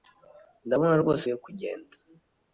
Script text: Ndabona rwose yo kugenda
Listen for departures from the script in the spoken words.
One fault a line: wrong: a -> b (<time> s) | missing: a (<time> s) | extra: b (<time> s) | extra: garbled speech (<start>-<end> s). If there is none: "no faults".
no faults